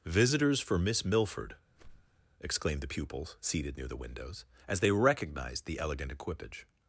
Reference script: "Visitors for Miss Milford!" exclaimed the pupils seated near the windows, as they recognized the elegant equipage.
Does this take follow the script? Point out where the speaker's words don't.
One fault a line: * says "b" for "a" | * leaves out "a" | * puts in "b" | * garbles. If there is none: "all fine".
all fine